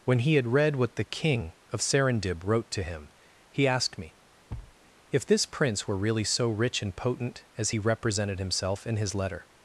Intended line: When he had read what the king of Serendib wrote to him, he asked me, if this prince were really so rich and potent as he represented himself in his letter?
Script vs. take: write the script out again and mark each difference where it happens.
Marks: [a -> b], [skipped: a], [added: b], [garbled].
When he had read what the king of Serendib wrote to him, he asked me, if this prince were really so rich and potent as he represented himself in his letter?